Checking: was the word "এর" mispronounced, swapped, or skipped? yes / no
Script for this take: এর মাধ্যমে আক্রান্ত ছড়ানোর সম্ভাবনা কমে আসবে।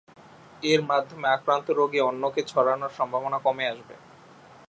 no